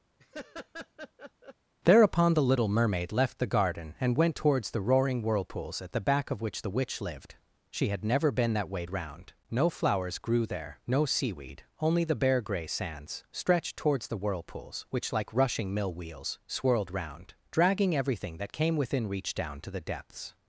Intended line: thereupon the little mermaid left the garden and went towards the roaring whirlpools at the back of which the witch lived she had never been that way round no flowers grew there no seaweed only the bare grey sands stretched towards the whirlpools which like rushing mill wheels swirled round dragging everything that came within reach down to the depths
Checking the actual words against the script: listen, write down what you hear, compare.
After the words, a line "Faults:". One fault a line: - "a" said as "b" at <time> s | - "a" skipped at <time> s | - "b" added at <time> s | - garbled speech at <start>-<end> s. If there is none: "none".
thereupon the little mermaid left the garden and went towards the roaring whirlpools at the back of which the witch lived she had never been that way round no flowers grew there no seaweed only the bare grey sands stretched towards the whirlpools which like rushing mill wheels swirled round dragging everything that came within reach down to the depths
Faults:
none